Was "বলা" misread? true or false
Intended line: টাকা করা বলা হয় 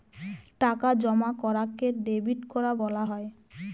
false